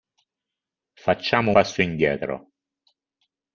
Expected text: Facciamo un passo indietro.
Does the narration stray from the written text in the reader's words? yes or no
yes